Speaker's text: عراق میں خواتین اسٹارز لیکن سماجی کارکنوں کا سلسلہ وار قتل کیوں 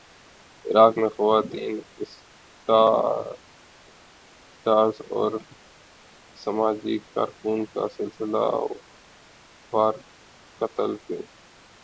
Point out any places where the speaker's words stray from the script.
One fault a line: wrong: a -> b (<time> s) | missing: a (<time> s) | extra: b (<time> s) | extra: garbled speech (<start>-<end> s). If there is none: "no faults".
wrong: لیکن -> اور (5.1 s)